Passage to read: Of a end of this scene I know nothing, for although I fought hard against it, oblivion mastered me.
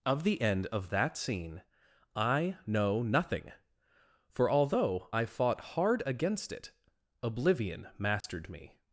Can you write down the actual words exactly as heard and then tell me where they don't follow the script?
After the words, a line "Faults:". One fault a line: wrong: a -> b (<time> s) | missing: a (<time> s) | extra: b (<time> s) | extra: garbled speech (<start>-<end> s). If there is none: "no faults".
Of the end of that scene I know nothing, for although I fought hard against it, oblivion mastered me.
Faults:
wrong: a -> the (0.2 s)
wrong: this -> that (0.9 s)